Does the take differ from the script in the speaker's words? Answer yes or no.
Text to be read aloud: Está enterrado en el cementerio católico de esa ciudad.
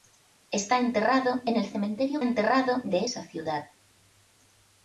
yes